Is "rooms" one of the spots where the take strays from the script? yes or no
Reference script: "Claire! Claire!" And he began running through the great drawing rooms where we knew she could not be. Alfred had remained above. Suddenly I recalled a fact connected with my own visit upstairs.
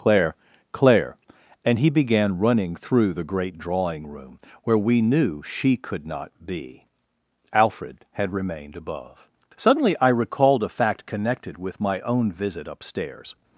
yes